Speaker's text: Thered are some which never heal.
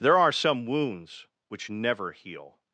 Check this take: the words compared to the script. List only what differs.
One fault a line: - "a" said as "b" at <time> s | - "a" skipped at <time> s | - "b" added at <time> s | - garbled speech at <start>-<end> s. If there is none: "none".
- "Thered" said as "There" at 0.0 s
- "wounds" added at 0.7 s